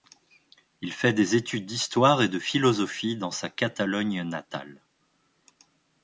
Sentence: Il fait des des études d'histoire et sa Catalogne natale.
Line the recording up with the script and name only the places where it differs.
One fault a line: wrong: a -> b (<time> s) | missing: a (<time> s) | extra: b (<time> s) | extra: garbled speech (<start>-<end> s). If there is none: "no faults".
missing: des (1.4 s)
extra: de philosophie dans (2.3 s)